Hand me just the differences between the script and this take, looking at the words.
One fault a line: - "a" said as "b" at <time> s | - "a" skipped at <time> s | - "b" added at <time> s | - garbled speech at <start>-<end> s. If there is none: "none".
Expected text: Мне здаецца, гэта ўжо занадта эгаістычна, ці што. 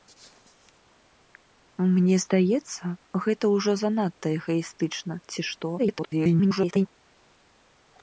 - garbled speech at 5.8-6.9 s